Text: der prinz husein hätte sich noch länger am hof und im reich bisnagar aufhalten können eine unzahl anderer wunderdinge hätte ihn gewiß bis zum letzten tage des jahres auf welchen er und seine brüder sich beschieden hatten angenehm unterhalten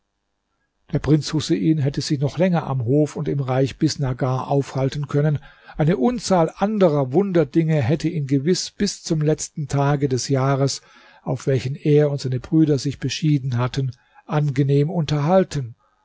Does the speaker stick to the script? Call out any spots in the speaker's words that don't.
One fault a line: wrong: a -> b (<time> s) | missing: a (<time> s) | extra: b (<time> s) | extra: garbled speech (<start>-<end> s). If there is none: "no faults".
no faults